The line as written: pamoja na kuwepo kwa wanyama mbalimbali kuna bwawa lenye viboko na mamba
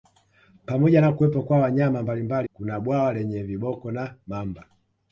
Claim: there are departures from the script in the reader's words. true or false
false